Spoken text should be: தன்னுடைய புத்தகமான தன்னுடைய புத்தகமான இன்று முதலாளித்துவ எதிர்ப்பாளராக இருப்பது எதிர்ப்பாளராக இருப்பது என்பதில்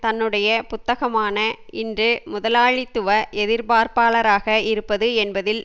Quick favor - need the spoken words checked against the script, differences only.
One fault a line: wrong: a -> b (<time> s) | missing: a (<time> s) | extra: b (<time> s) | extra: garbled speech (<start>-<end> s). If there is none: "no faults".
missing: தன்னுடைய புத்தகமான (1.4 s)
missing: எதிர்ப்பாளராக இருப்பது (5.1 s)